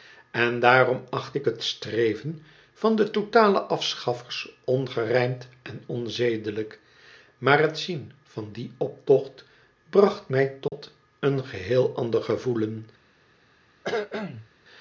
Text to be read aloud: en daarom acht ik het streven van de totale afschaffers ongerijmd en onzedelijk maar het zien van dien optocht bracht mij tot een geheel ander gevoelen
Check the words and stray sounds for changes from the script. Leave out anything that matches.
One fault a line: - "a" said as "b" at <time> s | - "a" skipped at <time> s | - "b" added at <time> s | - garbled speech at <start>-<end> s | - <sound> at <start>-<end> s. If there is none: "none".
- dropout at 10.7-10.7 s
- cough at 13.8-14.5 s